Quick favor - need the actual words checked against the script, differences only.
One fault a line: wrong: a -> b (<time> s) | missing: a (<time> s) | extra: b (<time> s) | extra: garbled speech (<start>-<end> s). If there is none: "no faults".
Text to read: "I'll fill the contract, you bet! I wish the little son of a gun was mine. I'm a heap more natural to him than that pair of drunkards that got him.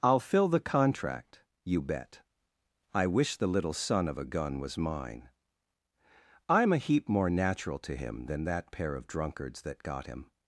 no faults